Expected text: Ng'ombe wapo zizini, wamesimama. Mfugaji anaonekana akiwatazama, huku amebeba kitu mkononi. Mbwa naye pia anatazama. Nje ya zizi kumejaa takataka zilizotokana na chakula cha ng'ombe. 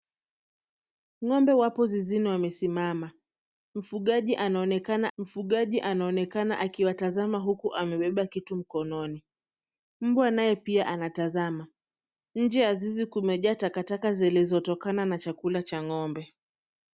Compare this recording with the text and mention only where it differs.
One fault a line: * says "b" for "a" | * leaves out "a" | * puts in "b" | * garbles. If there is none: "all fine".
* puts in "mfugaji anaonekana"